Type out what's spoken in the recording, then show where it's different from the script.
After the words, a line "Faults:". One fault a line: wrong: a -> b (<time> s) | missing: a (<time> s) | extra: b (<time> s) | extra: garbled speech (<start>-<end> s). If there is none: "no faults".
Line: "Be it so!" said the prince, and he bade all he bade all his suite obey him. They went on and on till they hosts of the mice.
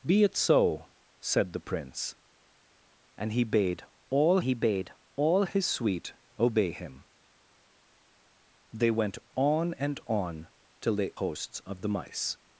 "Be it so!" said the prince, and he bade all he bade all his suite obey him. They went on and on till they hosts of the mice.
Faults:
no faults